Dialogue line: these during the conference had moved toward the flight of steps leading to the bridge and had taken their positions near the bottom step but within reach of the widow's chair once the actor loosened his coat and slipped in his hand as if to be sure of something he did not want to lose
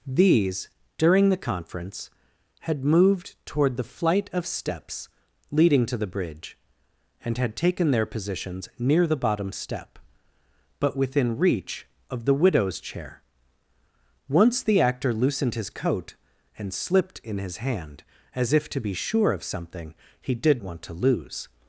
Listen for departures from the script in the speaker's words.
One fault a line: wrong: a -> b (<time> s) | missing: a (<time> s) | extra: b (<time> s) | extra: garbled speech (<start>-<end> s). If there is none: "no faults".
missing: not (20.6 s)